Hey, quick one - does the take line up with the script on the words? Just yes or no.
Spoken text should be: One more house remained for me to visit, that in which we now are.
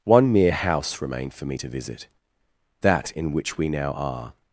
no